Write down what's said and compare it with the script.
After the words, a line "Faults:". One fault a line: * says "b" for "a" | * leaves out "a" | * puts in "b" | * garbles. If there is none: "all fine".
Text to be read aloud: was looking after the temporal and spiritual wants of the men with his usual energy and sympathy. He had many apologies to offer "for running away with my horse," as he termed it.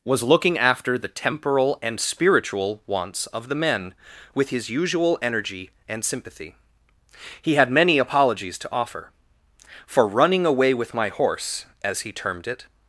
was looking after the temporal and spiritual wants of the men with his usual energy and sympathy. He had many apologies to offer "for running away with my horse," as he termed it.
Faults:
all fine